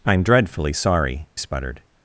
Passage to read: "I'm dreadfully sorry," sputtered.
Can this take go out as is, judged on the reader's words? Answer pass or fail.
pass